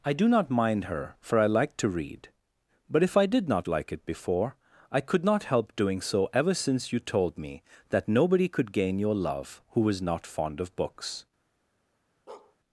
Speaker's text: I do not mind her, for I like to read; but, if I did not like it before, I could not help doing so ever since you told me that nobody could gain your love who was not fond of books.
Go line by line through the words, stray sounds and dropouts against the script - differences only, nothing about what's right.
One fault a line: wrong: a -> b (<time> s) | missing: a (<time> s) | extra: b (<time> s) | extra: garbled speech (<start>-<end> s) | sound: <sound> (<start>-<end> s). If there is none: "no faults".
sound: bark (12.3-12.6 s)